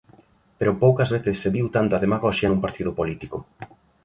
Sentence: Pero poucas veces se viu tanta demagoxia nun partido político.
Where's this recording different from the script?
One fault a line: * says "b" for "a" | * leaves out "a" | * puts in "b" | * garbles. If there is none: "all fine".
all fine